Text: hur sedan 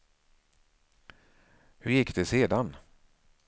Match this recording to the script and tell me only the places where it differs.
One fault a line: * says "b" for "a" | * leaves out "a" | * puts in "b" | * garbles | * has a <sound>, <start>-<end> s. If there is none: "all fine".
* puts in "gick det"